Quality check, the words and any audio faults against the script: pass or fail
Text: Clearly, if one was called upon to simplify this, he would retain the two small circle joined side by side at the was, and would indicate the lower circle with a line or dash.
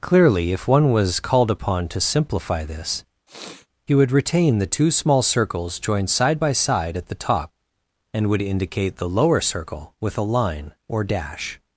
fail